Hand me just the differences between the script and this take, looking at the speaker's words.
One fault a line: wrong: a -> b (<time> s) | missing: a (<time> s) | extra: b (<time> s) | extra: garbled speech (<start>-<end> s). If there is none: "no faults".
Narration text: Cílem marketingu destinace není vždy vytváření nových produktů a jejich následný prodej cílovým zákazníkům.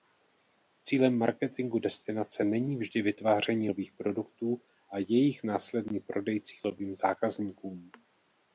no faults